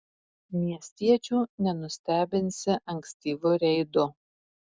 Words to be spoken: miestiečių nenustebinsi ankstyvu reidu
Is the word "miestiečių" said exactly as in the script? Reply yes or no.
yes